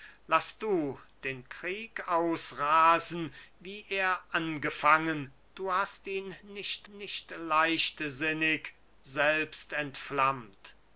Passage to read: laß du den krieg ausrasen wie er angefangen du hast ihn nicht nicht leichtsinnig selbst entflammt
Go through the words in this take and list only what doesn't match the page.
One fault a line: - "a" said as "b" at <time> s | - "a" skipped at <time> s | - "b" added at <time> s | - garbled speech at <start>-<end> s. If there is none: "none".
none